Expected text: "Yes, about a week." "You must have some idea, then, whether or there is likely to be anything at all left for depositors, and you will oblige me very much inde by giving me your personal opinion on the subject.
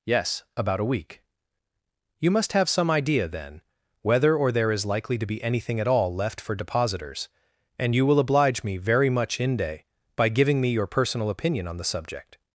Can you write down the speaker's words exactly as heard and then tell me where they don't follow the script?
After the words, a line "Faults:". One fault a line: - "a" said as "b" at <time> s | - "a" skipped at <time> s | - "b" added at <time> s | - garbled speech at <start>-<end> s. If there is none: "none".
"Yes, about a week." "You must have some idea, then, whether or there is likely to be anything at all left for depositors, and you will oblige me very much inde by giving me your personal opinion on the subject.
Faults:
none